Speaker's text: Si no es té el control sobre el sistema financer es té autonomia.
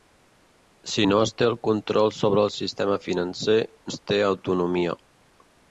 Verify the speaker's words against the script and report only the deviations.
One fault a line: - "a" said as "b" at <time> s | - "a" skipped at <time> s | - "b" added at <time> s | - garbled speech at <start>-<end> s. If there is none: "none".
none